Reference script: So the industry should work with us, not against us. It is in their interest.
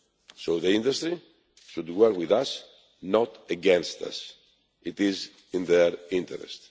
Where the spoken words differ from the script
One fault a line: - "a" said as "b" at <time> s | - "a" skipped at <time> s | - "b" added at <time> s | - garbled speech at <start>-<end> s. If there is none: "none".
none